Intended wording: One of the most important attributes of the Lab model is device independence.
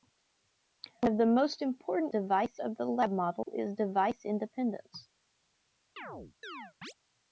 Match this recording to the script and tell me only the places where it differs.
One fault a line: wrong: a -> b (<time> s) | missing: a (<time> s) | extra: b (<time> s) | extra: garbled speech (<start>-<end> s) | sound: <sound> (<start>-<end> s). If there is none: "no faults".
wrong: attributes -> device (2.1 s)
sound: dropout (3.4-3.5 s)
sound: chirp (6.0-6.9 s)